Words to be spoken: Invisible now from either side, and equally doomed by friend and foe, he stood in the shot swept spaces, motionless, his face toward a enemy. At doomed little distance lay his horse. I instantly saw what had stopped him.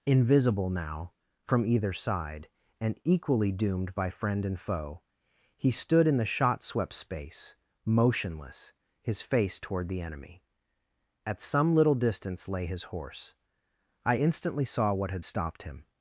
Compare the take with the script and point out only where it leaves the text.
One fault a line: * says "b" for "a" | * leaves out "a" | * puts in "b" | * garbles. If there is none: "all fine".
* says "space" for "spaces"
* says "the" for "a"
* says "some" for "doomed"